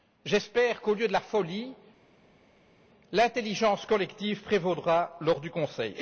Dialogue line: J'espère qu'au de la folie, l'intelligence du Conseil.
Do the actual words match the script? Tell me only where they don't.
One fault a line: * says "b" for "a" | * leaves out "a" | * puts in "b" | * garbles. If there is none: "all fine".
* puts in "lieu"
* puts in "collective prévaudra lors"